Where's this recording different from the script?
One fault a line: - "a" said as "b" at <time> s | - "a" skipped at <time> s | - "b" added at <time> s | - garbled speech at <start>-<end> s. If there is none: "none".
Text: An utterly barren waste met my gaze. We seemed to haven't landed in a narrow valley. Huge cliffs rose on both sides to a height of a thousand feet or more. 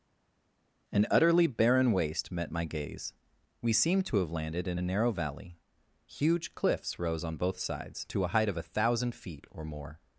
- "haven't" said as "have" at 4.2 s